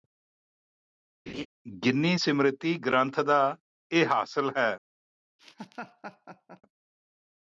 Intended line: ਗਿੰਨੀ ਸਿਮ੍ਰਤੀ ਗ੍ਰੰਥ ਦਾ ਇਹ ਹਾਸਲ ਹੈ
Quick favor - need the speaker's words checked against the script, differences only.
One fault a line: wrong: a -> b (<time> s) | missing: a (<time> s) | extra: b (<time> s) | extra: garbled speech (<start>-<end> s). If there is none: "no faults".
no faults